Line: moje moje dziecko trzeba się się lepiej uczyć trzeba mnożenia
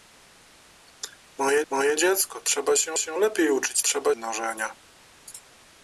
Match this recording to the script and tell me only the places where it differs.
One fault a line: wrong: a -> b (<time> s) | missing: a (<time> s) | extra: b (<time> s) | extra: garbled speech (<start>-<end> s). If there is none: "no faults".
no faults